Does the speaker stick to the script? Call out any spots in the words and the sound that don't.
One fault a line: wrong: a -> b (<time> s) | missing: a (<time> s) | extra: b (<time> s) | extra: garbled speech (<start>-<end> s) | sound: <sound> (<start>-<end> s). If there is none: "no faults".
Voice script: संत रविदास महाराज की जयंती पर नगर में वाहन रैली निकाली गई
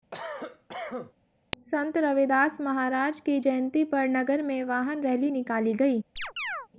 sound: cough (0.1-1.1 s)
sound: chirp (6.2-6.7 s)